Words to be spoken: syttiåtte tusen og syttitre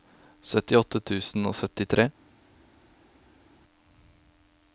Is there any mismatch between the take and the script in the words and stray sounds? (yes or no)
no